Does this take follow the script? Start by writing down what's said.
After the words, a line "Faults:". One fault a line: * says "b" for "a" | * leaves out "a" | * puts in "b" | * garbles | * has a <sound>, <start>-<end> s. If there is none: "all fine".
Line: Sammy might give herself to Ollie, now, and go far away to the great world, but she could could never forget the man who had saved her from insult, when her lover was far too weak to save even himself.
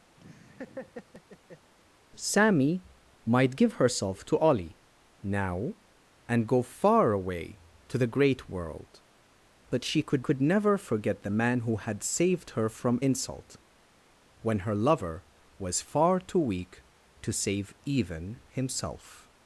Sammy might give herself to Ollie, now, and go far away to the great world, but she could could never forget the man who had saved her from insult, when her lover was far too weak to save even himself.
Faults:
* has a laugh, 0.2-1.7 s